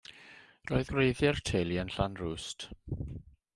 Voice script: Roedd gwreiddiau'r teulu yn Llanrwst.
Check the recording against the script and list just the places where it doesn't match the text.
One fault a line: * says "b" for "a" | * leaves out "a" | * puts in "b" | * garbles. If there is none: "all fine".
all fine